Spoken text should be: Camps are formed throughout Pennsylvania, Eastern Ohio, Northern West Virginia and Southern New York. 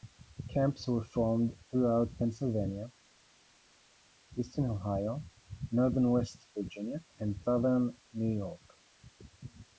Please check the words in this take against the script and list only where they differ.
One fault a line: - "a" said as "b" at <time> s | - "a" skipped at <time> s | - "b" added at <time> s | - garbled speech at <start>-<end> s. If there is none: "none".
- "are" said as "were" at 0.9 s